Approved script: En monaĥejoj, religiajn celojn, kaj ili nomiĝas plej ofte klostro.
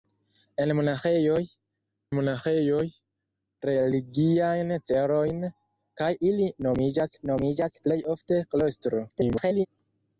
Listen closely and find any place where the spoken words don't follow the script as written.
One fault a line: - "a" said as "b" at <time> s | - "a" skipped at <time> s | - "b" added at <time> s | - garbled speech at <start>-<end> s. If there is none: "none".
- "monaĥejoj" added at 2.2 s
- "nomiĝas" added at 7.3 s
- garbled speech at 9.1-9.7 s